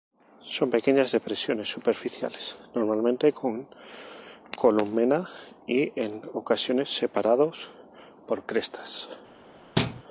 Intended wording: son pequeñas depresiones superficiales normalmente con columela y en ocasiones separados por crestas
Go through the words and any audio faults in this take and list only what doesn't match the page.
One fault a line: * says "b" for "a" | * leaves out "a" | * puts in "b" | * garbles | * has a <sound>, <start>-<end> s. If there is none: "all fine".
* has a thud, 9.8-10.0 s